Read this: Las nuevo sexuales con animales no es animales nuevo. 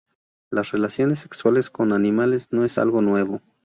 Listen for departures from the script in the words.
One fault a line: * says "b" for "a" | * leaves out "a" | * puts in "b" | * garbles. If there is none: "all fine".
* says "relaciones" for "nuevo"
* says "algo" for "animales"